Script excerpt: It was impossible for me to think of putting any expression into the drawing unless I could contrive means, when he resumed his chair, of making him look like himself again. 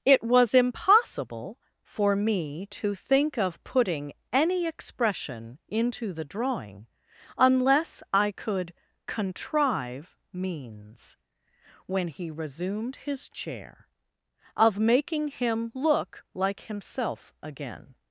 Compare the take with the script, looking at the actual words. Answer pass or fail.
pass